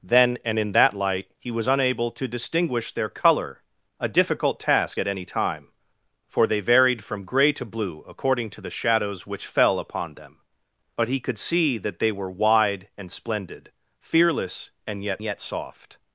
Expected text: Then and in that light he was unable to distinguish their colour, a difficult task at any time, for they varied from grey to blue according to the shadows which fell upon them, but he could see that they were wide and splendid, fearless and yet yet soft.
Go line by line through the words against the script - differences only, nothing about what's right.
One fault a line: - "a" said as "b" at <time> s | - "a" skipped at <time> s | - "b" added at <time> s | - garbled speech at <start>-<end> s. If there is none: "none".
none